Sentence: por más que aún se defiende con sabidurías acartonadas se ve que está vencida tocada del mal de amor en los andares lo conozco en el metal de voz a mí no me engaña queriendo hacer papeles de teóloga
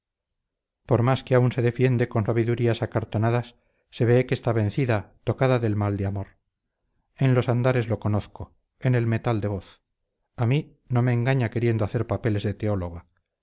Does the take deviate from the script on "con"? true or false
false